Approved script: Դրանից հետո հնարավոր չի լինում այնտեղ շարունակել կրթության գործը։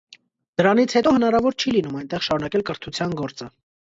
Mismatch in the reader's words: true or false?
false